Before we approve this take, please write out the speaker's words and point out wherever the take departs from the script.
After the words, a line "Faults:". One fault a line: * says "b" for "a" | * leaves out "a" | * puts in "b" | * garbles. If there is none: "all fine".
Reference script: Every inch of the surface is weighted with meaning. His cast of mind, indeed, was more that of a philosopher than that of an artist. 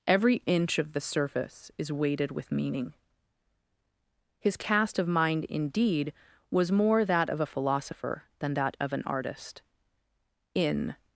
Every inch of the surface is weighted with meaning. His cast of mind, indeed, was more that of a philosopher than that of an artist. In
Faults:
* puts in "In"